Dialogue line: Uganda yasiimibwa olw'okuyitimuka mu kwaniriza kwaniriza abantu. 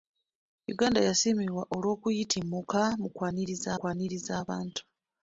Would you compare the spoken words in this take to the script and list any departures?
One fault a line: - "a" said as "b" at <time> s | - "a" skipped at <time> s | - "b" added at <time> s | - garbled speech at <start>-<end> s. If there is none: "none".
none